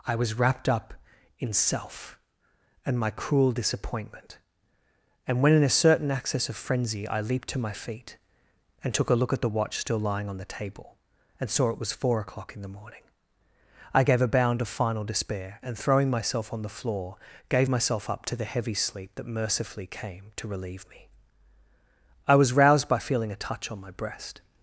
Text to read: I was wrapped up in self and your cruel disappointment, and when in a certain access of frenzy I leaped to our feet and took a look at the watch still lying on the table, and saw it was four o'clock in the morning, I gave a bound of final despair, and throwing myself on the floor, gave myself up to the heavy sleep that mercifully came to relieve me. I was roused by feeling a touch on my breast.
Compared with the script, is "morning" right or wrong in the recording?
right